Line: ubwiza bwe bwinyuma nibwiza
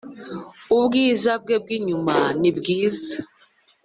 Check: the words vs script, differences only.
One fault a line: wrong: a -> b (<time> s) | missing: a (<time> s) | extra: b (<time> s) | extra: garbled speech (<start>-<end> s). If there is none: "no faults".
no faults